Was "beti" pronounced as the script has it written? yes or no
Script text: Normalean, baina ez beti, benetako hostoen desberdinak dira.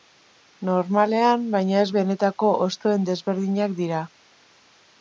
no